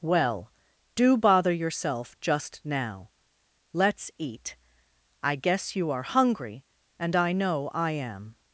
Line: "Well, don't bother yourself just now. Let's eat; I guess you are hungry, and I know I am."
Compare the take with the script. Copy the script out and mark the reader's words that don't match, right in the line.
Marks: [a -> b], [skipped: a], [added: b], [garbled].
"Well, [don't -> do] bother yourself just now. Let's eat; I guess you are hungry, and I know I am."